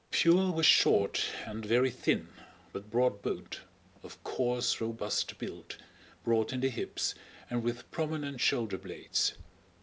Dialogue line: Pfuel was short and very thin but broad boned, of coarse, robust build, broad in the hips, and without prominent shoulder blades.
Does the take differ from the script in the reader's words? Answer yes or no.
yes